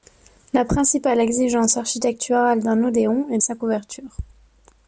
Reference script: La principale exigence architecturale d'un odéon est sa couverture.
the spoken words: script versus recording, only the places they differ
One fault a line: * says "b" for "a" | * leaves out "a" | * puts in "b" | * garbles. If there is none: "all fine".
all fine